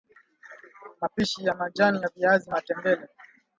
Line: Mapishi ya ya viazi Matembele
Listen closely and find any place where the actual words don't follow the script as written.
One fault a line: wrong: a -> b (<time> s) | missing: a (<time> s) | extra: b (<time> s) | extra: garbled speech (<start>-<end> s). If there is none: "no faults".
extra: majani (1.6 s)